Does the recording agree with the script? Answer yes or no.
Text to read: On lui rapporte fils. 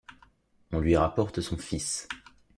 no